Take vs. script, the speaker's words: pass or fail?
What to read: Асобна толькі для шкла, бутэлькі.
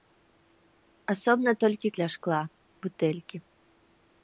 pass